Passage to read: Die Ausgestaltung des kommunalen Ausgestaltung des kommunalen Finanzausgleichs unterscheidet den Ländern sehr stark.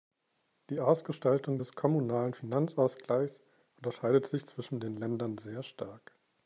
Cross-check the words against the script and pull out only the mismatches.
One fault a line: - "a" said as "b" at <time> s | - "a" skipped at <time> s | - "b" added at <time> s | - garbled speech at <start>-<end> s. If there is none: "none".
- "Ausgestaltung des kommunalen Finanzausgleichs unterscheidet" said as "Finanzausgleichs unterscheidet sich zwischen" at 2.3 s